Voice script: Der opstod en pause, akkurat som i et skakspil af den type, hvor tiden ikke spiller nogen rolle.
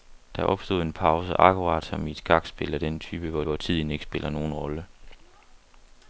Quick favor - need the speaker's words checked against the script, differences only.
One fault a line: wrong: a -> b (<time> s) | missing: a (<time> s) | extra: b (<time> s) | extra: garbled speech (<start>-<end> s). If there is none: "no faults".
extra: hvor (3.4 s)